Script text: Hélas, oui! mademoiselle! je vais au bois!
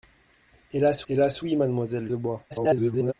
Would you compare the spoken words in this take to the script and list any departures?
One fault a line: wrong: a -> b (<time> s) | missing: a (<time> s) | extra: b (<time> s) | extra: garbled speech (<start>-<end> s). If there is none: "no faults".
extra: hélas (1.1 s)
missing: je vais (2.1 s)
extra: garbled speech (2.5-3.1 s)